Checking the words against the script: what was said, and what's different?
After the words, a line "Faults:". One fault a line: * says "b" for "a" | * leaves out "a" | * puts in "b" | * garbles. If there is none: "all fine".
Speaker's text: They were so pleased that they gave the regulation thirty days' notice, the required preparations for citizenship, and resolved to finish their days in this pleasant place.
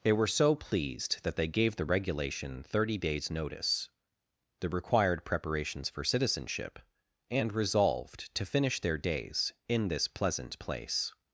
They were so pleased that they gave the regulation thirty days' notice, the required preparations for citizenship, and resolved to finish their days in this pleasant place.
Faults:
all fine